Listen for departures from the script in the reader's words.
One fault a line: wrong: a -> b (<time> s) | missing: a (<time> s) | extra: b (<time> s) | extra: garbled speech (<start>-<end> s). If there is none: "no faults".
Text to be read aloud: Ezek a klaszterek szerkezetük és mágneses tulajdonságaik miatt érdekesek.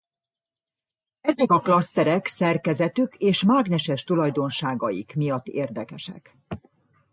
no faults